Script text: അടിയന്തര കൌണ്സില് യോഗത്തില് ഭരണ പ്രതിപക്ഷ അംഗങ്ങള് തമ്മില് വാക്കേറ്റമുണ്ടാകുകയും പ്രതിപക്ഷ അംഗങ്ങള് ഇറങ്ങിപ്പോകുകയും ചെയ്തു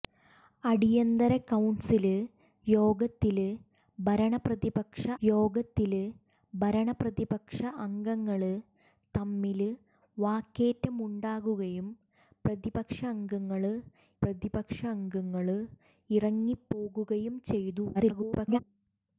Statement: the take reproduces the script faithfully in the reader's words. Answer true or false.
false